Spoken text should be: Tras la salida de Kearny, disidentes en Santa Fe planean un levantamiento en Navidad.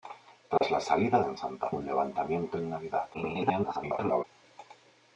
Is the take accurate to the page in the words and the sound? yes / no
no